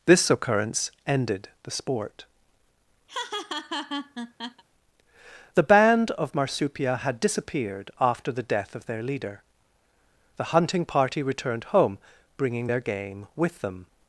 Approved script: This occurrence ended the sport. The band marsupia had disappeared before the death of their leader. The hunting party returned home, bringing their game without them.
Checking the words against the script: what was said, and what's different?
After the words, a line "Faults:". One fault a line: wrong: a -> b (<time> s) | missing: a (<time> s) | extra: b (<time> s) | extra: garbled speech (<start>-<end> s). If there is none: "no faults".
This occurrence ended the sport. The band of marsupia had disappeared after the death of their leader. The hunting party returned home, bringing their game with them.
Faults:
extra: of (6.1 s)
wrong: before -> after (8.0 s)
wrong: without -> with (13.4 s)